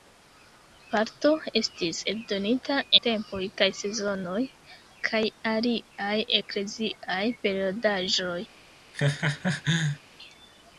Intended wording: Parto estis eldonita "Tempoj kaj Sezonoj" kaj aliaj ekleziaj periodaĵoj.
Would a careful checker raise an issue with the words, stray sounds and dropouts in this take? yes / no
yes